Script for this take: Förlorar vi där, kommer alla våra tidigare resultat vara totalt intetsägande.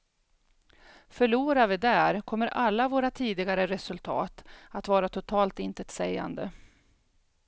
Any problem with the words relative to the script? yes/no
yes